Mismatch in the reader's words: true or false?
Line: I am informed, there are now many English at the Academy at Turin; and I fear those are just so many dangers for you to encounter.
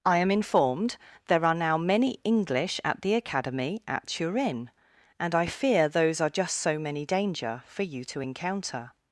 true